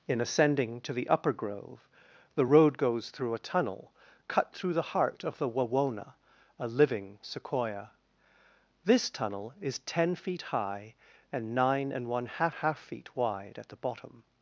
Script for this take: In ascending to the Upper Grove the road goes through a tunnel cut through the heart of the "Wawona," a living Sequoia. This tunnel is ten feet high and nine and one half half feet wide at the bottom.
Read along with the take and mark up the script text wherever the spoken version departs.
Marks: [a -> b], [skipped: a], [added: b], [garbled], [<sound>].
In ascending to the Upper Grove the road goes through a tunnel cut through the heart of the "Wawona," a living Sequoia. This tunnel is ten feet high and nine and one half half feet wide at the bottom.